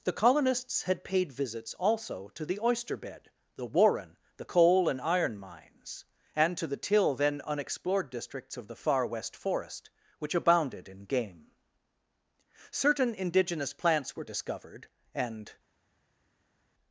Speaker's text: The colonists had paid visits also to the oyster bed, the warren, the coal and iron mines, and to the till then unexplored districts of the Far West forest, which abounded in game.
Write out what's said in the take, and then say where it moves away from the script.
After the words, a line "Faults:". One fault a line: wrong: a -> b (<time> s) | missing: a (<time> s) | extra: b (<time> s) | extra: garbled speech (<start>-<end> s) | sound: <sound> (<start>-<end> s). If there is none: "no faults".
The colonists had paid visits also to the oyster bed, the warren, the coal and iron mines, and to the till then unexplored districts of the Far West forest, which abounded in game. Certain indigenous plants were discovered, and
Faults:
extra: Certain indigenous plants were discovered and (12.7 s)